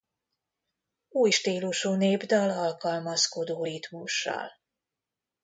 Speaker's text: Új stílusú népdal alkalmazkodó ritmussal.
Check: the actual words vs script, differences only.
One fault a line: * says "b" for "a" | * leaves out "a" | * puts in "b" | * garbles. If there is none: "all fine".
all fine